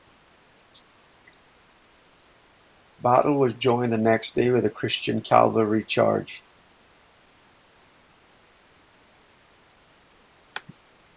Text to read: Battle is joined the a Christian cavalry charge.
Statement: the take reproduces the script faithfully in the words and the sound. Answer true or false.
false